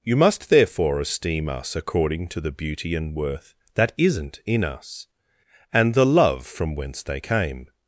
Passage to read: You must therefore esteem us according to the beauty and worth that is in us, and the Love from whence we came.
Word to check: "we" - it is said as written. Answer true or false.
false